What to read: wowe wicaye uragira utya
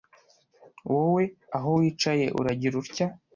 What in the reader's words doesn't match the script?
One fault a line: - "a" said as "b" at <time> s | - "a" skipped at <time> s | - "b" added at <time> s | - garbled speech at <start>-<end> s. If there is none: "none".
- "aho" added at 1.6 s